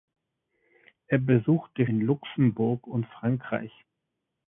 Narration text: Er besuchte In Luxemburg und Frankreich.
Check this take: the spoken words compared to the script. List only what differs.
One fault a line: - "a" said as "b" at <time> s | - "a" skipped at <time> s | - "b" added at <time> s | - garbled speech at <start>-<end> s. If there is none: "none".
none